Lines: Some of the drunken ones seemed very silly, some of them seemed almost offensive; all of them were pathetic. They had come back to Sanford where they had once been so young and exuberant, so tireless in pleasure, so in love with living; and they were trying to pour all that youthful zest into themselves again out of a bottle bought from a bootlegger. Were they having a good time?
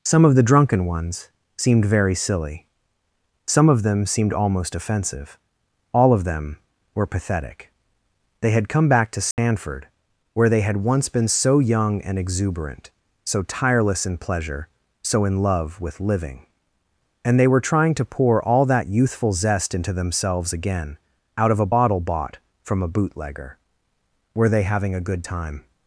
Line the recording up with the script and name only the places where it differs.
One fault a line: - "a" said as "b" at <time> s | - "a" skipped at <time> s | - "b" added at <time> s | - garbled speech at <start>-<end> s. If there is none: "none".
none